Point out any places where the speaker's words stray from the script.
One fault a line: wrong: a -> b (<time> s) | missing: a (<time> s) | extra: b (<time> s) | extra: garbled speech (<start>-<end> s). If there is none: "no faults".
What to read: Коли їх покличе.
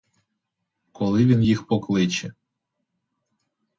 extra: він (1.2 s)